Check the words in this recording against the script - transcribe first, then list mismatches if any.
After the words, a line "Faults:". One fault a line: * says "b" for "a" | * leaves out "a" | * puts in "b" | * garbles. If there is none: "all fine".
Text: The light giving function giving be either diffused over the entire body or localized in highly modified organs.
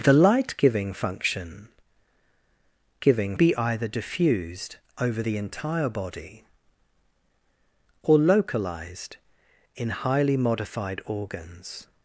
The light giving function giving be either diffused over the entire body or localized in highly modified organs.
Faults:
all fine